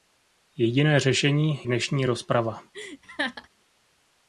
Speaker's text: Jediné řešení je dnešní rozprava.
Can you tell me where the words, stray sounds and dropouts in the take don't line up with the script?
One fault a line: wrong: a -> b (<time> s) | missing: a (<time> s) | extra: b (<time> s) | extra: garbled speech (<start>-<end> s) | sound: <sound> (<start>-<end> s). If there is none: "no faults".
missing: je (1.6 s)
sound: laugh (2.7-3.5 s)